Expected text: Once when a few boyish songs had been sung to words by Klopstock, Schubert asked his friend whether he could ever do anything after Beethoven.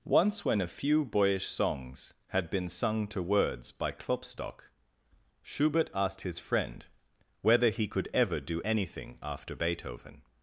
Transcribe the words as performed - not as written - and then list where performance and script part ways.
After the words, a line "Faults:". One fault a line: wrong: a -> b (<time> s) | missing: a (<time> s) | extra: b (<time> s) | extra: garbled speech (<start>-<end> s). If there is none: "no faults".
Once when a few boyish songs had been sung to words by Klopstock, Schubert asked his friend whether he could ever do anything after Beethoven.
Faults:
no faults